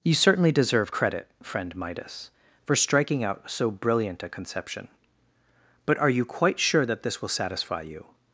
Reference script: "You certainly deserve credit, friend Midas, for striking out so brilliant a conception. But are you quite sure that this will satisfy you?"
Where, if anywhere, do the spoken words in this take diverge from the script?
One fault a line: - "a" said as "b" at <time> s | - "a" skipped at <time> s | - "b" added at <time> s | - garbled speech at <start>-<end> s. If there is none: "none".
none